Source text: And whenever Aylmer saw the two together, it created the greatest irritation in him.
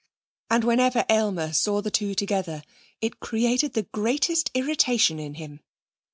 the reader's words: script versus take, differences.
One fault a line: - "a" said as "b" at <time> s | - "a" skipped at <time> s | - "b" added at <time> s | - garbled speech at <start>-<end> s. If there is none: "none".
none